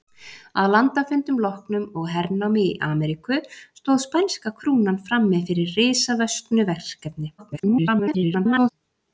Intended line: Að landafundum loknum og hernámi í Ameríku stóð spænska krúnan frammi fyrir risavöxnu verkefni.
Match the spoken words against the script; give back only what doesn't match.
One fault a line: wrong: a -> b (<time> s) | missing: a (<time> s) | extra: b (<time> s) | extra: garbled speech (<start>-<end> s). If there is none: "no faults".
extra: garbled speech (7.4-8.7 s)